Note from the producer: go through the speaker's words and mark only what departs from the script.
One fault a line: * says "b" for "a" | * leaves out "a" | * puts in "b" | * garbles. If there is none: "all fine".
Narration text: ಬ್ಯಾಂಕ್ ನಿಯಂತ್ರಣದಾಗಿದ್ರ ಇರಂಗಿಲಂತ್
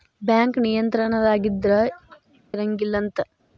all fine